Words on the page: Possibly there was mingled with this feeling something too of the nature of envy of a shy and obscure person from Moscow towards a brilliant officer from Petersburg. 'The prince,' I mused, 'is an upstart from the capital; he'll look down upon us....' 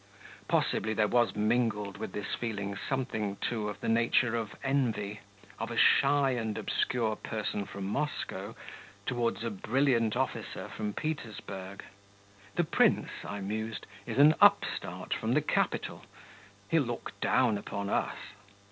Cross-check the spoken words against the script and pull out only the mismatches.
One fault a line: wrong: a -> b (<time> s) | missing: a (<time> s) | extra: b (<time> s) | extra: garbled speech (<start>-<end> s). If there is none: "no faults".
no faults